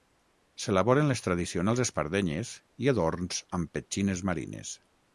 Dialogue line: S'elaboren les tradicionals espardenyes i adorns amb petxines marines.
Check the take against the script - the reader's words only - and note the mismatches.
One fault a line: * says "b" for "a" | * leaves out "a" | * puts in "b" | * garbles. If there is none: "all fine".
all fine